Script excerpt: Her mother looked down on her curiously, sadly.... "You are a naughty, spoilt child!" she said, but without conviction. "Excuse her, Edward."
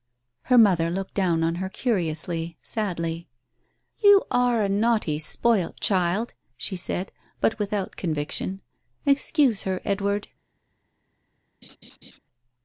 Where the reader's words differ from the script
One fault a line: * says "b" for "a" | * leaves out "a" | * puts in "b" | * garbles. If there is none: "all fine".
all fine